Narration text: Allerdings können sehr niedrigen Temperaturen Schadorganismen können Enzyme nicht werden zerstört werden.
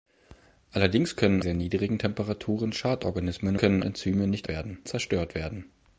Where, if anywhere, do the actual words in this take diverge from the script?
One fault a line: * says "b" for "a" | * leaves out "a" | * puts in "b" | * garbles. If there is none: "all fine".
all fine